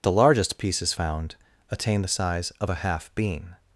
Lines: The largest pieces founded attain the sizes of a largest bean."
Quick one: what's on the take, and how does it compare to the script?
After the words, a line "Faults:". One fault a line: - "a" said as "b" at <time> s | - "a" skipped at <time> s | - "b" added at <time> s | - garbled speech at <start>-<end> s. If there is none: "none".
The largest pieces found attain the size of a half bean."
Faults:
- "founded" said as "found" at 0.9 s
- "sizes" said as "size" at 2.1 s
- "largest" said as "half" at 2.8 s